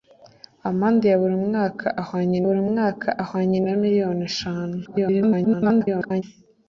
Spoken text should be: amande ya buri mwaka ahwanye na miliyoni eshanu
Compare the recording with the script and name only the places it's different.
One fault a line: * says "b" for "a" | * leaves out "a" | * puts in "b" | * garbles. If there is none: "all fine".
* puts in "buri mwaka ahwanye"
* garbles